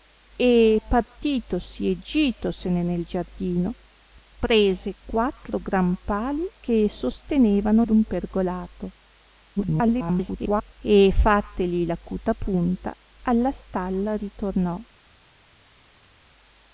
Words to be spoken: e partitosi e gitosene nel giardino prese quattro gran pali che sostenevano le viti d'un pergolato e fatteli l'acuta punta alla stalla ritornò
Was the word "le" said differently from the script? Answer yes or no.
yes